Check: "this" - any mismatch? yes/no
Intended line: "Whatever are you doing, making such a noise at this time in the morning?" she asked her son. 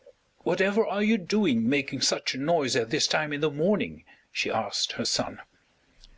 no